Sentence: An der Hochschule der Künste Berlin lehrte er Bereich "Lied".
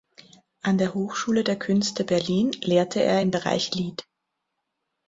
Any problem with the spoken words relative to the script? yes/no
yes